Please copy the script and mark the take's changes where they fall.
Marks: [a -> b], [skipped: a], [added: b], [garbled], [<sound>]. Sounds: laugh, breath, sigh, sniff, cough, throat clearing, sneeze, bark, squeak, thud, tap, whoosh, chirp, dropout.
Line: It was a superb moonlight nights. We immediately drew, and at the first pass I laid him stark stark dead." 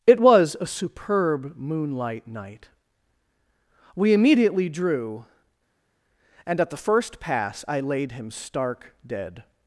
It was a superb moonlight [nights. -> night] We immediately drew, and at the first pass I laid him stark [skipped: stark] dead."